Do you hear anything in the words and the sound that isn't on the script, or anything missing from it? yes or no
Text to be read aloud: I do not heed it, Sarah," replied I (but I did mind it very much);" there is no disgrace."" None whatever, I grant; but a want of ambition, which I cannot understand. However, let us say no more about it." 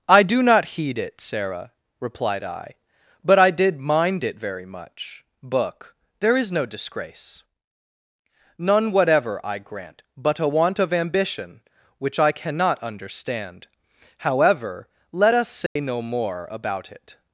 yes